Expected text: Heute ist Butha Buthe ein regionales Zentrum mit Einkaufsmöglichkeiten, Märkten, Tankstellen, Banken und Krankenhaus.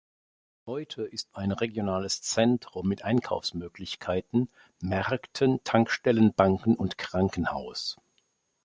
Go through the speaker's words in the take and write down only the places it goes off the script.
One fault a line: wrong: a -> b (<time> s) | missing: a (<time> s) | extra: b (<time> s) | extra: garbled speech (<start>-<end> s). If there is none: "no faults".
missing: Butha Buthe (1.3 s)